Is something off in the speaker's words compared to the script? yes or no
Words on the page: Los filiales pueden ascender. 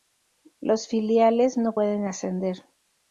yes